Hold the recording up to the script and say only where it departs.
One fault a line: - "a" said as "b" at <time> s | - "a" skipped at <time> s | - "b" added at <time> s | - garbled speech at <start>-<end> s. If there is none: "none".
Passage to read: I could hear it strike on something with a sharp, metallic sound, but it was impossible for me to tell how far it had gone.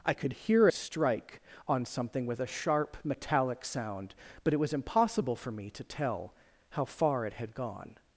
- "it" skipped at 0.7 s